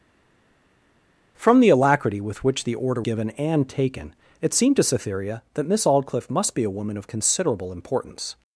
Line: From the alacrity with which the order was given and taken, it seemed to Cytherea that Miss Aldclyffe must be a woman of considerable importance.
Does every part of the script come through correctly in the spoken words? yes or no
no